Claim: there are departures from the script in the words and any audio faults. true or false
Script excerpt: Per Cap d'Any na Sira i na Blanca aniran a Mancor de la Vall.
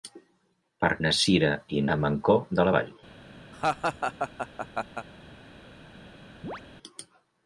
true